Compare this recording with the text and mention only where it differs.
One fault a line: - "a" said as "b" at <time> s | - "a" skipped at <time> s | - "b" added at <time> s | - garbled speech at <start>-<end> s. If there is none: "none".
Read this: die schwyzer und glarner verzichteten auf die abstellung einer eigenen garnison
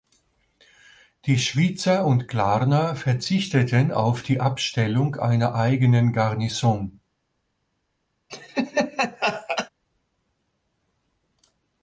none